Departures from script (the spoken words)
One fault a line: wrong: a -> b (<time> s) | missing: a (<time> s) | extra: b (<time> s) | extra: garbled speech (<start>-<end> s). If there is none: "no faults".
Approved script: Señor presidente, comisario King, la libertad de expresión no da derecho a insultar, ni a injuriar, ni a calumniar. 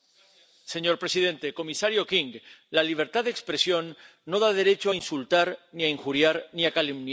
no faults